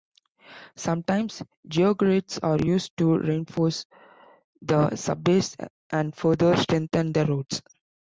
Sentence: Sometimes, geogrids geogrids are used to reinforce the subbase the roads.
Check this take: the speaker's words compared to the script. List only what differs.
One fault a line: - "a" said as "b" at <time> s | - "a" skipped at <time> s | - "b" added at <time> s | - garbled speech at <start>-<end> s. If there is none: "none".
- "geogrids" skipped at 2.4 s
- "and further strengthen" added at 5.9 s